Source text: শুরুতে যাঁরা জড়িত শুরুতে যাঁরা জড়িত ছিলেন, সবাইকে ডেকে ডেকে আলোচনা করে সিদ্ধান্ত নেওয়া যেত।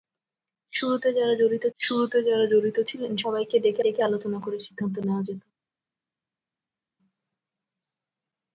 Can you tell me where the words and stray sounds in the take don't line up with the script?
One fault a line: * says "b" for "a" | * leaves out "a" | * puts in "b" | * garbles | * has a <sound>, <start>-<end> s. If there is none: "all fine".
all fine